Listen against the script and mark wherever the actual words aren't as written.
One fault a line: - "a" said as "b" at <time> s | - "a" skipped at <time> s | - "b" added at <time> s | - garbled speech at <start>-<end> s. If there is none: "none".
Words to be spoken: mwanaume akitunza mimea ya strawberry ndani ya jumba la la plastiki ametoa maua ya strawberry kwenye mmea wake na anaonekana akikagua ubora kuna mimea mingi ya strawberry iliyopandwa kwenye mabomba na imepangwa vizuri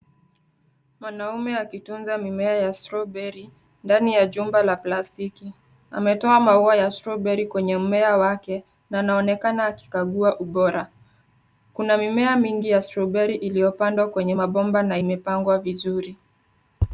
- "la" skipped at 4.8 s